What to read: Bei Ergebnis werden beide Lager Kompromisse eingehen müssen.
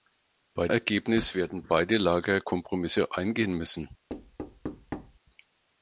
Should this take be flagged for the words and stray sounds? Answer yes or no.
yes